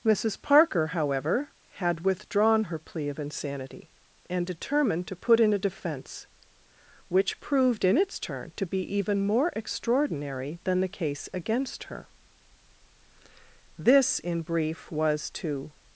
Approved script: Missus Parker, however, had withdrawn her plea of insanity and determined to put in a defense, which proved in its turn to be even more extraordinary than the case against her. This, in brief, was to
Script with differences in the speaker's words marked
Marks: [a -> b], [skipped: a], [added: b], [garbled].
Missus Parker, however, had withdrawn her plea of insanity and determined to put in a defense, which proved in its turn to be even more extraordinary than the case against her. This, in brief, was to